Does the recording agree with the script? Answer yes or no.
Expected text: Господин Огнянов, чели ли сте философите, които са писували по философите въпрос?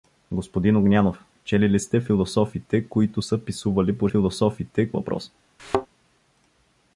yes